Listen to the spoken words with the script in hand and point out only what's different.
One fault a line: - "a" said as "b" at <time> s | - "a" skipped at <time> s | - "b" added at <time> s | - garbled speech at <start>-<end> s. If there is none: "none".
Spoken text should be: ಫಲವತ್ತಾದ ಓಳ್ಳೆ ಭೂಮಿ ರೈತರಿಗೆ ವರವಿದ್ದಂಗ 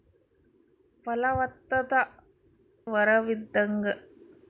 - "ಓಳ್ಳೆ ಭೂಮಿ ರೈತರಿಗೆ" skipped at 1.9 s